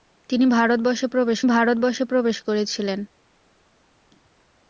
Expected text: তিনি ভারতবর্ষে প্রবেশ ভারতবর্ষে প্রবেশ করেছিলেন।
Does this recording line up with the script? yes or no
yes